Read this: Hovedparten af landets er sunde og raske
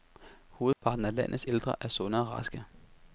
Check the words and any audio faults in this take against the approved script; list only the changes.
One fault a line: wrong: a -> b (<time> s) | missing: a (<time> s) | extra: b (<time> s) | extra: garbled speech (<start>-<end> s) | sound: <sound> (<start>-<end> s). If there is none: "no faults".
sound: dropout (0.7-0.8 s)
extra: ældre (1.5 s)